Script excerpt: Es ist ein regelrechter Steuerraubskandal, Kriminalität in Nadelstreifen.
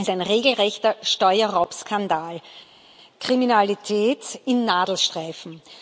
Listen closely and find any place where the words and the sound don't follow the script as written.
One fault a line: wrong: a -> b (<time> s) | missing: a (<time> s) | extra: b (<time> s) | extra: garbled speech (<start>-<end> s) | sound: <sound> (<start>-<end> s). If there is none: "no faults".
missing: ist (0.1 s)